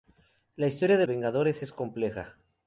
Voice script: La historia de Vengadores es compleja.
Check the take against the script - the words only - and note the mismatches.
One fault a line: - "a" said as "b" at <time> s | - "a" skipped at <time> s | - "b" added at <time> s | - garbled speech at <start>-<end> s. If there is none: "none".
none